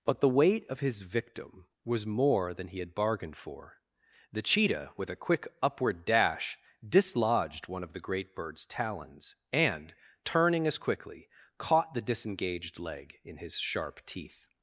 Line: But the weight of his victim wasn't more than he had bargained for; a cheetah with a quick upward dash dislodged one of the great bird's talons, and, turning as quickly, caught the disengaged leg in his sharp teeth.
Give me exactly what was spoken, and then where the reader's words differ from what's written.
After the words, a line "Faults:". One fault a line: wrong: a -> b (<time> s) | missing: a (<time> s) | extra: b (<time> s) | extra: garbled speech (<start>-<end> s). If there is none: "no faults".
But the weight of his victim was more than he had bargained for; the cheetah with a quick upward dash dislodged one of the great bird's talons, and, turning as quickly, caught the disengaged leg in his sharp teeth.
Faults:
wrong: wasn't -> was (1.8 s)
wrong: a -> the (4.3 s)